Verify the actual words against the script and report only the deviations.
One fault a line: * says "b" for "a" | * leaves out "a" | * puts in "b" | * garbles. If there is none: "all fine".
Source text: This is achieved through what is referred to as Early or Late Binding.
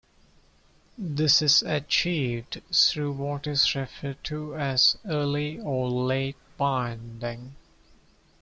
all fine